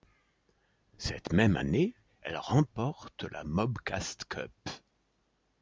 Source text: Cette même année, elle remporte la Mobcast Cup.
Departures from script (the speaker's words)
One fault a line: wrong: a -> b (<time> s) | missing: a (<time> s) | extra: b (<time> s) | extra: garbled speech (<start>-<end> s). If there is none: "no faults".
no faults